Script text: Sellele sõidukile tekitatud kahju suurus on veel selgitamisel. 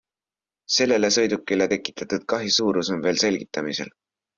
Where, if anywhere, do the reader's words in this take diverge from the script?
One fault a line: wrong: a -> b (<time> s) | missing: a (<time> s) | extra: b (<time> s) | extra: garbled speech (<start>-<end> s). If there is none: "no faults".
no faults